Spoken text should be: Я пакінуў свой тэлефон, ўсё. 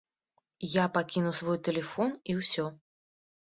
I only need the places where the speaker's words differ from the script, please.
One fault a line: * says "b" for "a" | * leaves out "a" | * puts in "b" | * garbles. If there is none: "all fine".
* puts in "і"